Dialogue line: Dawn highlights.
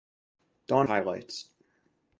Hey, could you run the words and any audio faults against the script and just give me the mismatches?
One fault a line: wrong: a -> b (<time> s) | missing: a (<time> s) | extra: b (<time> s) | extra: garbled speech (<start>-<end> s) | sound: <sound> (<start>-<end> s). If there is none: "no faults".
no faults